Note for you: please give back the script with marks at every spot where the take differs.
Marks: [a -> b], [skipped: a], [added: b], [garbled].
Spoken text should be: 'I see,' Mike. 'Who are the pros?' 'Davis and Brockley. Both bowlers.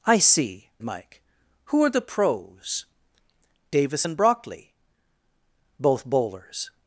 'I see,' Mike. 'Who are the pros?' 'Davis and Brockley. Both bowlers.